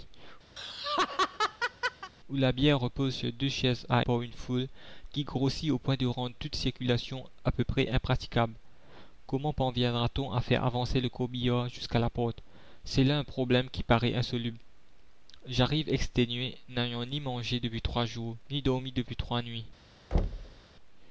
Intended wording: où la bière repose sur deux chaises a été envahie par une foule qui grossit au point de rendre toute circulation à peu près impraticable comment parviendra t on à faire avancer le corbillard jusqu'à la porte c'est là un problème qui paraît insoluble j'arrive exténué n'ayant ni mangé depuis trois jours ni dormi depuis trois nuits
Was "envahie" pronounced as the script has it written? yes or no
no